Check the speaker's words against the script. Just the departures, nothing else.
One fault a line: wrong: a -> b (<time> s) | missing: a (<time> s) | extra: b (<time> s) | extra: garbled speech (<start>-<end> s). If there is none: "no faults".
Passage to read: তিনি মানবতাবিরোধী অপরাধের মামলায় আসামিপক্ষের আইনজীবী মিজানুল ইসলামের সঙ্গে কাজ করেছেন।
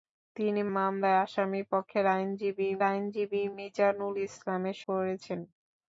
missing: মানবতাবিরোধী অপরাধের (0.6 s)
extra: আইনজীবী (2.8 s)
missing: সঙ্গে কাজ (4.8 s)